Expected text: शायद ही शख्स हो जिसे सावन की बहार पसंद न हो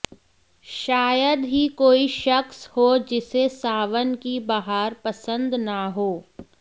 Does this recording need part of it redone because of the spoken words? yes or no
yes